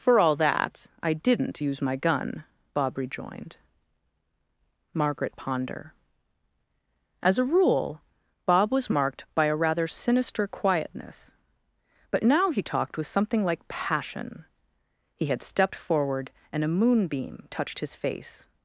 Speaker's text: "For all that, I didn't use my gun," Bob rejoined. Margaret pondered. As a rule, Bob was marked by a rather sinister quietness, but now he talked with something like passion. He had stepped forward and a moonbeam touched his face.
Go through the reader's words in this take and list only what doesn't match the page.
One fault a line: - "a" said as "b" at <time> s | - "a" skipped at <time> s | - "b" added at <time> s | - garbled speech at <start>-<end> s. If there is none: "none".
- "pondered" said as "ponder" at 5.3 s